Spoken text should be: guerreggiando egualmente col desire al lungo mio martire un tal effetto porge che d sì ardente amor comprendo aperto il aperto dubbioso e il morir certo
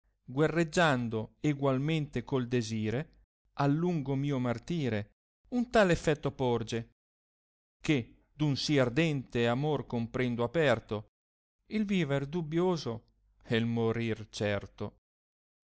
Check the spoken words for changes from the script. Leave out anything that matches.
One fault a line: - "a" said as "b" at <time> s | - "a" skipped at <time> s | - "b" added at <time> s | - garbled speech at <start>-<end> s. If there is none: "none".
- "un" added at 8.4 s
- "aperto" said as "viver" at 11.8 s